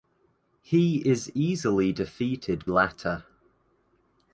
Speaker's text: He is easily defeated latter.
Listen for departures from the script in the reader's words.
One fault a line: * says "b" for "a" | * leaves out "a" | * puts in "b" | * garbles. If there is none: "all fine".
all fine